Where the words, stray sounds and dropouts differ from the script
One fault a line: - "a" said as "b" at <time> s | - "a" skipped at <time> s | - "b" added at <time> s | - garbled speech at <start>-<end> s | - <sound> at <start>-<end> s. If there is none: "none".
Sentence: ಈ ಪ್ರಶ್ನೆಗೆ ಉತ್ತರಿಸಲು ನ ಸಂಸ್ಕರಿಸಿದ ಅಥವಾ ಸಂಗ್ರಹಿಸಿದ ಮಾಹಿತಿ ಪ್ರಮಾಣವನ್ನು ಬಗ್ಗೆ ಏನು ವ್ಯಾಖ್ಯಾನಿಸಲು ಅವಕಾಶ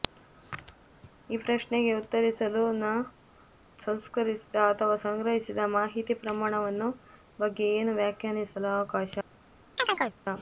- chirp at 9.8-10.2 s